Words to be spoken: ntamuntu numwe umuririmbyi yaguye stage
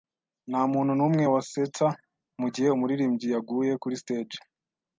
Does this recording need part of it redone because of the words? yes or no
yes